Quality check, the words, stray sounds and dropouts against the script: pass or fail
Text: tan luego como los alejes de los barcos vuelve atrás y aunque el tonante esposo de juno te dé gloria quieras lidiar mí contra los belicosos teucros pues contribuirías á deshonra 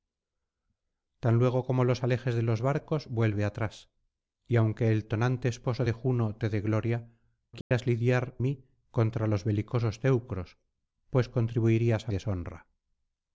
fail